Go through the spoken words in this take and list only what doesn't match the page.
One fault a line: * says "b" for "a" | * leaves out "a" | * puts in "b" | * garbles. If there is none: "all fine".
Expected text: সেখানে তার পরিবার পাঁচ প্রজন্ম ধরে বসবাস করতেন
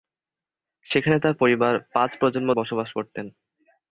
* leaves out "ধরে"